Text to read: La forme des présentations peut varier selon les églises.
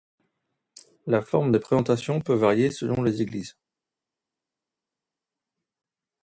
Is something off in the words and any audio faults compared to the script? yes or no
no